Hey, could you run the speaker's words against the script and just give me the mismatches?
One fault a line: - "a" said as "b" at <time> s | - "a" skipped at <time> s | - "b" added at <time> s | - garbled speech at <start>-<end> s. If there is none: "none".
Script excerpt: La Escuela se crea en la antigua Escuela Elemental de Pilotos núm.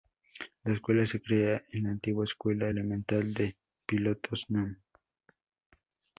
none